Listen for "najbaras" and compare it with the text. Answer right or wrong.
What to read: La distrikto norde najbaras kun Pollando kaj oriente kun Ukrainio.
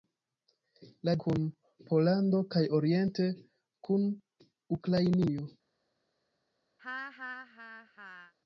wrong